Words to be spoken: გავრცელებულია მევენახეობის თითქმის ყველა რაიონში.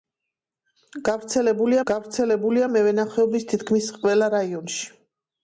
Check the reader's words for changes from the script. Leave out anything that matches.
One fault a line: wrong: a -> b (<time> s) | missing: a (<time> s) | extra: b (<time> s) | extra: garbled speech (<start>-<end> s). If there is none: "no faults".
extra: გავრცელებულია (1.9 s)